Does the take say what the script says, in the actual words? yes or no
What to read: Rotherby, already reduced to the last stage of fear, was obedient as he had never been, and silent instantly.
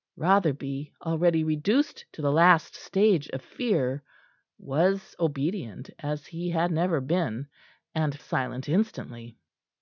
yes